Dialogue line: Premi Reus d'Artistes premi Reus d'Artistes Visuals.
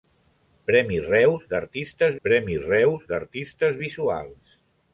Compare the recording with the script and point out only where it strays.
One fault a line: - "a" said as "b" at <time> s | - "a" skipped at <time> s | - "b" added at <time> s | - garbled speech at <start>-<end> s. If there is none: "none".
none